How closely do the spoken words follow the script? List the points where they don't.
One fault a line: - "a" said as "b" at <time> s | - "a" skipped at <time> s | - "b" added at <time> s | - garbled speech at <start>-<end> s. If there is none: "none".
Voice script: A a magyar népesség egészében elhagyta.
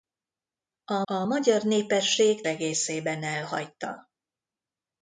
none